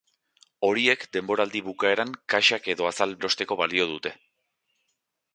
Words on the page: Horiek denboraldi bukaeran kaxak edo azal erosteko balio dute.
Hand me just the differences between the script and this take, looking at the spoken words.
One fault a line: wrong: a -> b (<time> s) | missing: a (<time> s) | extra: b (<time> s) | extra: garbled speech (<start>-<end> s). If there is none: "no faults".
no faults